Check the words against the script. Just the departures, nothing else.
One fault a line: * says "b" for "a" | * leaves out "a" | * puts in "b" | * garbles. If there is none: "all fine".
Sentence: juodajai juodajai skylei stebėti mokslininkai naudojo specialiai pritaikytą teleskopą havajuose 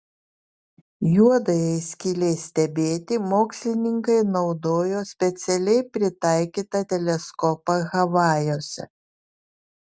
* leaves out "juodajai"